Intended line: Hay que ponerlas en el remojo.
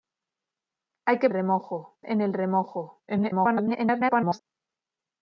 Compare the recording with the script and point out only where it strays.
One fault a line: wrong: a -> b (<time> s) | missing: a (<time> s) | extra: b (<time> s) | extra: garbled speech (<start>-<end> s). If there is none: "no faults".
wrong: ponerlas -> remojo (1.3 s)
extra: garbled speech (3.1-4.4 s)